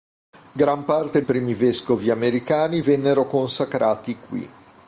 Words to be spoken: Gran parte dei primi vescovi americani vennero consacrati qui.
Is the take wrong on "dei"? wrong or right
wrong